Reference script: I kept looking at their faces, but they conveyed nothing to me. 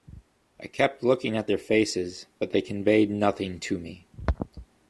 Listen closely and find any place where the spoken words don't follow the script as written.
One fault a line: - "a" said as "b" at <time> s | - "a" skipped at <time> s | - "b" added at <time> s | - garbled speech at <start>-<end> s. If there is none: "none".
none